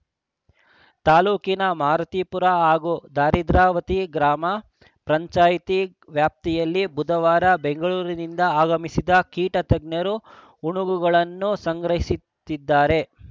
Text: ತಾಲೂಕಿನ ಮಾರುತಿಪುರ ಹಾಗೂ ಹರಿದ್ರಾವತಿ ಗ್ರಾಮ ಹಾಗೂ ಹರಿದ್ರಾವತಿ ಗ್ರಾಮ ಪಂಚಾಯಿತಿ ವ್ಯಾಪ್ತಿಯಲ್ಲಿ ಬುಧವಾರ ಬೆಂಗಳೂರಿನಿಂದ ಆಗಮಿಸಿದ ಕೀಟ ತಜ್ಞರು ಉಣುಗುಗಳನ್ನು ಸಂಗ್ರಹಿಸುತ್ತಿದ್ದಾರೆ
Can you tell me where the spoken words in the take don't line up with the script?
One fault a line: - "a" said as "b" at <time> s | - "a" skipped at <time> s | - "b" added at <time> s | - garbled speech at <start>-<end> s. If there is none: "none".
- "ಹಾಗೂ ಹರಿದ್ರಾವತಿ ಗ್ರಾಮ" skipped at 4.5 s